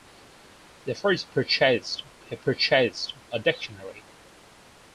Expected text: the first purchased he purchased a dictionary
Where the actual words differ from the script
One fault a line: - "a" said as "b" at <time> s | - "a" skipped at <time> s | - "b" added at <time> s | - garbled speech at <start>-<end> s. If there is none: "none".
none